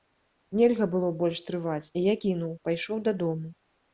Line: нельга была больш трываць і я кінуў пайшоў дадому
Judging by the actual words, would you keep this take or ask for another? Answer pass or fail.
fail